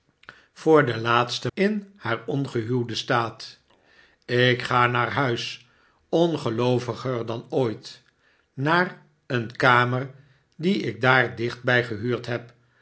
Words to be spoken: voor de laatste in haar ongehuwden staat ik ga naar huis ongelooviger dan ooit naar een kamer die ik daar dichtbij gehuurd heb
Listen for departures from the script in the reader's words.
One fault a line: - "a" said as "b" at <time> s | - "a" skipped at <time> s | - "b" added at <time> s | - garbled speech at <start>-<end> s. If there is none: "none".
none